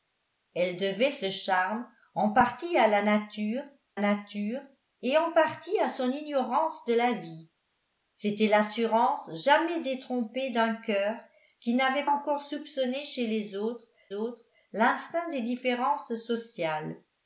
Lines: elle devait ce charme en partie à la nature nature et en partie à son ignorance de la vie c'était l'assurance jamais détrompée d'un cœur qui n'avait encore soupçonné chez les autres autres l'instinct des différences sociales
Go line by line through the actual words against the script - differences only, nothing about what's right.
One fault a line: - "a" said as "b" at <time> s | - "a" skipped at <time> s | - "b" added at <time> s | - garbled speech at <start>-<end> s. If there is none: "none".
none